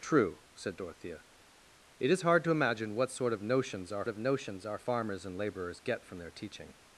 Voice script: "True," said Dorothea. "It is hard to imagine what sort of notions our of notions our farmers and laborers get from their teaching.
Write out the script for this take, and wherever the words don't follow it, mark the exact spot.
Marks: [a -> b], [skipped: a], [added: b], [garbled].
"True," said Dorothea. "It is hard to imagine what sort of notions our of notions our farmers and laborers get from their teaching.